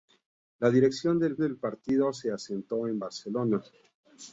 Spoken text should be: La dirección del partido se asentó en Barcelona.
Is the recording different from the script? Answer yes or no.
yes